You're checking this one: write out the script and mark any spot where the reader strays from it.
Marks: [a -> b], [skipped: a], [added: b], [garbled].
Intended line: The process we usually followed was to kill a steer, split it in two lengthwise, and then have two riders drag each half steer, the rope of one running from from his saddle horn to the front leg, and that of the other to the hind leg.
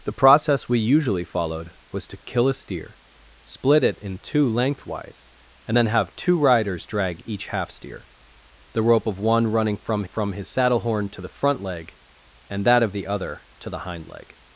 The process we usually followed was to kill a steer, split it in two lengthwise, and then have two riders drag each half steer, the rope of one running from from his saddle horn to the front leg, and that of the other to the hind leg.